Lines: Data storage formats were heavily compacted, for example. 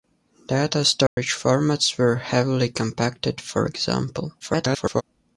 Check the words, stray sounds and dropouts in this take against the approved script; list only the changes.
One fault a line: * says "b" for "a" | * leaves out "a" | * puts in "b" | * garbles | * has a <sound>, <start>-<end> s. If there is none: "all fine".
* has a dropout, 1.1-1.2 s
* garbles